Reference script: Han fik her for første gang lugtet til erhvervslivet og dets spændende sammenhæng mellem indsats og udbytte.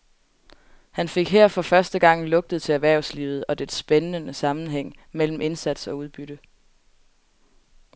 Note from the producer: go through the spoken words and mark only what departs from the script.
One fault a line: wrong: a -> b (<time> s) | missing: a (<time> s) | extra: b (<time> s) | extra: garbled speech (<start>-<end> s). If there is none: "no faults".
no faults